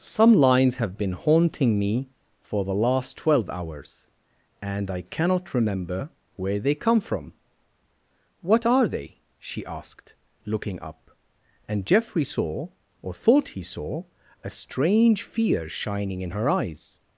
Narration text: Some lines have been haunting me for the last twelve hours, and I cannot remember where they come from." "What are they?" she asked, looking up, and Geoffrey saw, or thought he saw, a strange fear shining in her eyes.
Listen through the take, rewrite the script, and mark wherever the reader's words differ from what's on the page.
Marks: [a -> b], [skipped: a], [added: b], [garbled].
Some lines have been haunting me for the last twelve hours, and I cannot remember where they come from." "What are they?" she asked, looking up, and Geoffrey saw, or thought he saw, a strange fear shining in her eyes.